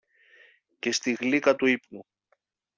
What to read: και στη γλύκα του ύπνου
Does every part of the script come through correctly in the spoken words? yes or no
yes